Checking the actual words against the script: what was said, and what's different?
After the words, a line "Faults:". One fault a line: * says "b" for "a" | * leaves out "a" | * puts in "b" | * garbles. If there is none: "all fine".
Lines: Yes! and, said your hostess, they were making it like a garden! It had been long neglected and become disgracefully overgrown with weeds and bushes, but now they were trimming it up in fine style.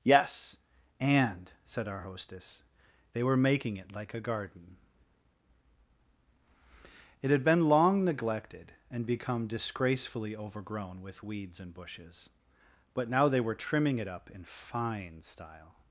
Yes! and, said our hostess, they were making it like a garden! It had been long neglected and become disgracefully overgrown with weeds and bushes, but now they were trimming it up in fine style.
Faults:
* says "our" for "your"